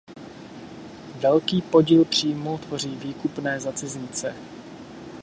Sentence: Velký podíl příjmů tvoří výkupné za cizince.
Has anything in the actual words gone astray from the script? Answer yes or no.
no